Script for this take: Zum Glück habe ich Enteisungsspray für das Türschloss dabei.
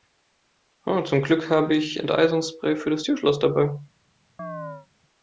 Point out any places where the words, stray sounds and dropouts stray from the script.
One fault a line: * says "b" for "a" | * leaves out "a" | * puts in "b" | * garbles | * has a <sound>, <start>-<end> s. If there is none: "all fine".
* has a chirp, 4.4-4.9 s